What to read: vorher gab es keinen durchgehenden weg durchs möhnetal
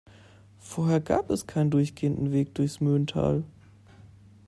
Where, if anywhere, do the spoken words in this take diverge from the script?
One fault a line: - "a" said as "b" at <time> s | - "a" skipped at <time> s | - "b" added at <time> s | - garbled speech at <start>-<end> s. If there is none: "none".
none